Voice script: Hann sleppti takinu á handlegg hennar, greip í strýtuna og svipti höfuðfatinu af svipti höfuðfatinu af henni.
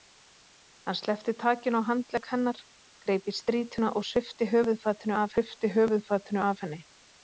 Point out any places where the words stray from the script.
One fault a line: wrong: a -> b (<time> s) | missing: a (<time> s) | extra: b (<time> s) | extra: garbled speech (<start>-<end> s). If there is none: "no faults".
no faults